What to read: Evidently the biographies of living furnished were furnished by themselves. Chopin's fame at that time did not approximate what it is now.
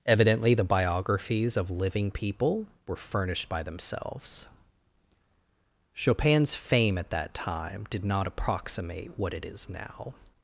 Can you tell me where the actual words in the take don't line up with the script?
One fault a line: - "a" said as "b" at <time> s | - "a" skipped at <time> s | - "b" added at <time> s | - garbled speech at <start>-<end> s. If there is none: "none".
- "furnished" said as "people" at 2.1 s